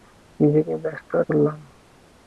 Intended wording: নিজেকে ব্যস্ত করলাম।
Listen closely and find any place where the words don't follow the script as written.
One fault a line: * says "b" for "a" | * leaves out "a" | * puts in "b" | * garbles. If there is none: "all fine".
all fine